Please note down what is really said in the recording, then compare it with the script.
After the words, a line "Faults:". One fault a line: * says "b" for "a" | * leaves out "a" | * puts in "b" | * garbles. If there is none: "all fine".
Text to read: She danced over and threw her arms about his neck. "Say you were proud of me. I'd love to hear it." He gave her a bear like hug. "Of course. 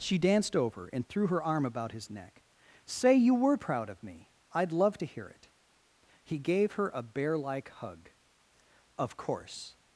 She danced over and threw her arm about his neck. "Say you were proud of me. I'd love to hear it." He gave her a bear like hug. "Of course.
Faults:
* says "arm" for "arms"